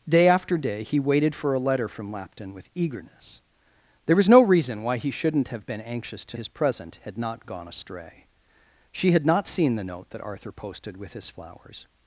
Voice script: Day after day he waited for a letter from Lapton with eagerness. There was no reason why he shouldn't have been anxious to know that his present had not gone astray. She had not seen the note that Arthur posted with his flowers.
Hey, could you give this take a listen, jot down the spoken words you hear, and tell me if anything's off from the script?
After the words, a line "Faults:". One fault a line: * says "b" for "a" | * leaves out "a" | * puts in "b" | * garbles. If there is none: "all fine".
Day after day he waited for a letter from Lapton with eagerness. There was no reason why he shouldn't have been anxious to his present had not gone astray. She had not seen the note that Arthur posted with his flowers.
Faults:
* leaves out "know that"